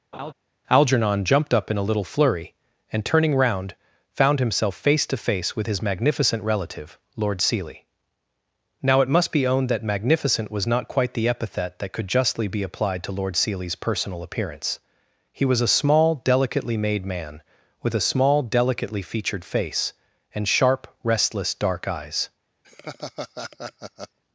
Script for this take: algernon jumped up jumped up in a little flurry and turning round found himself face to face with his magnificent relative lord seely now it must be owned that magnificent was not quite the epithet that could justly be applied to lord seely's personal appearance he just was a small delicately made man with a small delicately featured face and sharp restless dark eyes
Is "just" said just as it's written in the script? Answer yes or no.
no